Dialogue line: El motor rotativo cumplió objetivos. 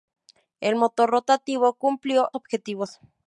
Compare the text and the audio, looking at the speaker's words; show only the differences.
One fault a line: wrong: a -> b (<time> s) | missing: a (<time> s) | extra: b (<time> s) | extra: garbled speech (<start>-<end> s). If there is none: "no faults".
no faults